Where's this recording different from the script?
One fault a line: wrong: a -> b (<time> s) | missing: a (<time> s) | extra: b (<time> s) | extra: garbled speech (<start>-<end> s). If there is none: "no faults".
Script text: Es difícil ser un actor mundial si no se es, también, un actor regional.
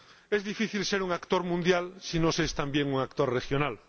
no faults